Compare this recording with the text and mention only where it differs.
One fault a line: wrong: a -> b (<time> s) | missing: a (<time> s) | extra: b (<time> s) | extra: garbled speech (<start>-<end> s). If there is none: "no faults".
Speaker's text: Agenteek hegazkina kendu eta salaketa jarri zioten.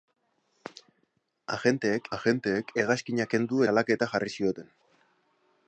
extra: agenteek (2.2 s)
missing: eta (3.6 s)